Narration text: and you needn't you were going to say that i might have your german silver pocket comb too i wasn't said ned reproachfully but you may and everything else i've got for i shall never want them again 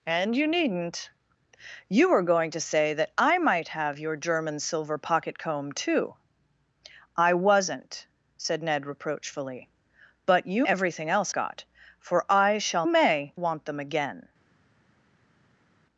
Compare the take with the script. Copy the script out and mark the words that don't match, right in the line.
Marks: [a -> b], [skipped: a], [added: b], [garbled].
and you needn't you were going to say that i might have your german silver pocket comb too i wasn't said ned reproachfully but you [skipped: may and] everything else [skipped: i've] got for i shall [never -> may] want them again